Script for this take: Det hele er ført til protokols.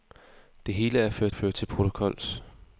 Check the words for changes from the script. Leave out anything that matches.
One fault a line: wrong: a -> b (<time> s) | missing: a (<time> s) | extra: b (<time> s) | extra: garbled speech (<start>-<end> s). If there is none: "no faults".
extra: ført (1.3 s)